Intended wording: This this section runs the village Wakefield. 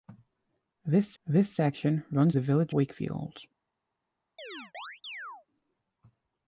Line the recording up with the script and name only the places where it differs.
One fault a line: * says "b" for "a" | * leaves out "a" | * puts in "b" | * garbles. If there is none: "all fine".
all fine